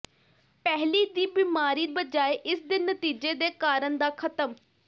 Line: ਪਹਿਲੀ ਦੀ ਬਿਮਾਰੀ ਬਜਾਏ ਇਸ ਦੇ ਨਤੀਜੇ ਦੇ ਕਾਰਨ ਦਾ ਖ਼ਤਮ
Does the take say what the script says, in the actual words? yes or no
yes